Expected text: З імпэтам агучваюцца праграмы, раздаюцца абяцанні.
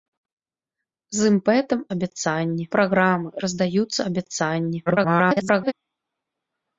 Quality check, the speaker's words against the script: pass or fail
fail